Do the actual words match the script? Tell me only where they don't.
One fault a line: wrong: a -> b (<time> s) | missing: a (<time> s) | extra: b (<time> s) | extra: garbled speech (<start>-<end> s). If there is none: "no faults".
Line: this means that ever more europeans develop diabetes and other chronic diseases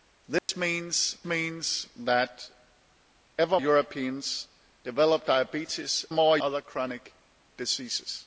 extra: means (1.2 s)
missing: more (3.6 s)
wrong: and -> more (6.1 s)